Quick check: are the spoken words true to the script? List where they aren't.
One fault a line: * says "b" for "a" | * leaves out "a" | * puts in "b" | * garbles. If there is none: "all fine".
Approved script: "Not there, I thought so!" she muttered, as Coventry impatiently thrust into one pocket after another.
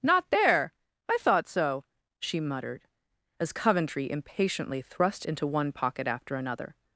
all fine